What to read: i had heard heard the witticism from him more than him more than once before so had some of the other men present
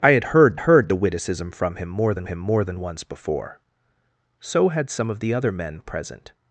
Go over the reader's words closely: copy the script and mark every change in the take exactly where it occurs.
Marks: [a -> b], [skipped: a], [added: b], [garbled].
i had heard heard the witticism from him more than him more than once before so had some of the other men present